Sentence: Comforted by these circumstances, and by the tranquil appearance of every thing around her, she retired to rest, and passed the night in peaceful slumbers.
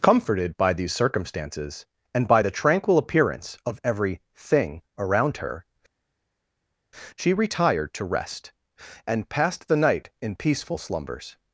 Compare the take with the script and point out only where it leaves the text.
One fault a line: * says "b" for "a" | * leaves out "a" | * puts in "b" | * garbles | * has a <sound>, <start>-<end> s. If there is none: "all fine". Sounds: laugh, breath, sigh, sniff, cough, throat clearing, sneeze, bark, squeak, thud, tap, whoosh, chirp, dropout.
all fine